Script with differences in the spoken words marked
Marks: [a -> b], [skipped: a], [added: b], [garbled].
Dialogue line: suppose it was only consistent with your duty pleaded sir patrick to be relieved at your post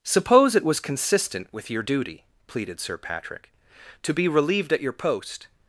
suppose it was [skipped: only] consistent with your duty pleaded sir patrick to be relieved at your post